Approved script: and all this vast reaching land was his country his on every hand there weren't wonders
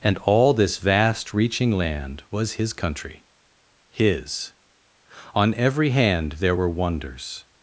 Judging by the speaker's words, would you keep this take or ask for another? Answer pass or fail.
fail